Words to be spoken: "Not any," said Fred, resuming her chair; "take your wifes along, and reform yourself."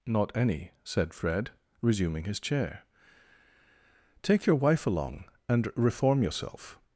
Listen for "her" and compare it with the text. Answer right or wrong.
wrong